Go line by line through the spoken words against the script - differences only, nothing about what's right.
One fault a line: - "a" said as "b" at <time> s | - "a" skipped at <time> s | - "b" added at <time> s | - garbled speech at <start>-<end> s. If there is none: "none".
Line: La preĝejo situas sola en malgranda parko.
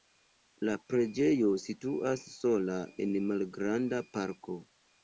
none